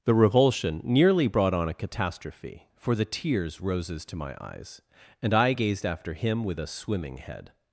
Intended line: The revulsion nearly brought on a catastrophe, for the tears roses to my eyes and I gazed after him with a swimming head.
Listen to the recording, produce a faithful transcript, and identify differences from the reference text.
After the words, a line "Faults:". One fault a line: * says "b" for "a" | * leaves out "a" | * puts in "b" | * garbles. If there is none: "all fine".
The revulsion nearly brought on a catastrophe, for the tears roses to my eyes and I gazed after him with a swimming head.
Faults:
all fine